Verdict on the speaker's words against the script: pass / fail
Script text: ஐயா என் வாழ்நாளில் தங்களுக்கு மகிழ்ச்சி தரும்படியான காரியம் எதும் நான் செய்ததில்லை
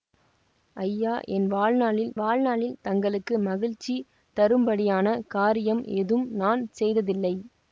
fail